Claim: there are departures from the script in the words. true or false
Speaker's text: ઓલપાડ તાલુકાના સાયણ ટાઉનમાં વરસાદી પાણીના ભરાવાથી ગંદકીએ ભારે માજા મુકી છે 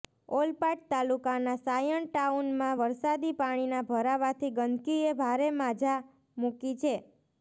false